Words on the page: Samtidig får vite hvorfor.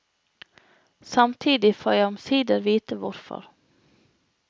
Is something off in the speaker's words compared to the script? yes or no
yes